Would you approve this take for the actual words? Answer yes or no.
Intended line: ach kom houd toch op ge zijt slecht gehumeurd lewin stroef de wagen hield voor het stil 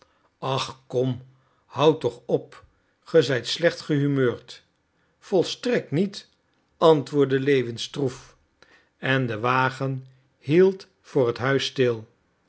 no